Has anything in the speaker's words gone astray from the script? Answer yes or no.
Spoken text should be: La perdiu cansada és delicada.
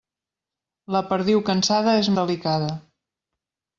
no